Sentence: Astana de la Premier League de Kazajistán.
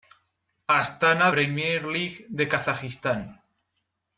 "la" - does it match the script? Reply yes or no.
no